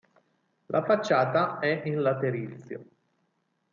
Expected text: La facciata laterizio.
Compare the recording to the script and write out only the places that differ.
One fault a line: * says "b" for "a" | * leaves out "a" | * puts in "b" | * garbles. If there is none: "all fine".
* puts in "è in"